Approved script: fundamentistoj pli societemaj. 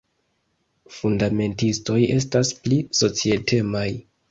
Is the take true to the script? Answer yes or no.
no